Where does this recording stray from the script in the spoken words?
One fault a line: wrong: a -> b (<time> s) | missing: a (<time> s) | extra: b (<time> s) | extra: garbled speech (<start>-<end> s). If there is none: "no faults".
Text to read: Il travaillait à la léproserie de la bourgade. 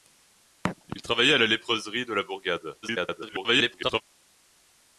extra: garbled speech (2.8-4.0 s)